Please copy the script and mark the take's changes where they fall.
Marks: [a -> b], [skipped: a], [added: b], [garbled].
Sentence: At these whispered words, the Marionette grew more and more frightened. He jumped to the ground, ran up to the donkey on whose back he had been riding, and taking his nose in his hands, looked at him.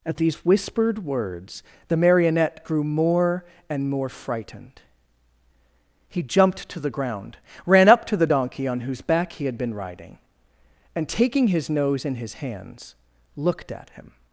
At these whispered words, the Marionette grew more and more frightened. He jumped to the ground, ran up to the donkey on whose back he had been riding, and taking his nose in his hands, looked at him.